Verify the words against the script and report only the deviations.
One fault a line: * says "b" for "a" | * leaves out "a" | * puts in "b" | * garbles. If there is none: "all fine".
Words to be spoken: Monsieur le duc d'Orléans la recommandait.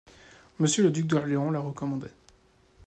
all fine